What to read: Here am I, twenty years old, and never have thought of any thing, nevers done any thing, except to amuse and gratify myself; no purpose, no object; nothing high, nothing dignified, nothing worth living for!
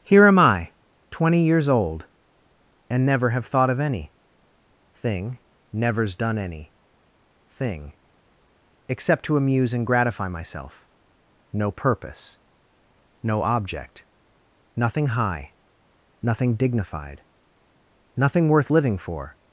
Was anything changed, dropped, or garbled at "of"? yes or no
no